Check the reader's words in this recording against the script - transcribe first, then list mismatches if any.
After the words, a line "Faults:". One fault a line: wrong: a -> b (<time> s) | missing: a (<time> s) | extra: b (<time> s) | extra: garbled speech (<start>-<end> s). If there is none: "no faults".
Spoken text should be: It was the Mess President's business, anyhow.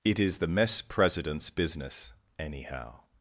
It is the Mess President's business, anyhow.
Faults:
wrong: was -> is (0.2 s)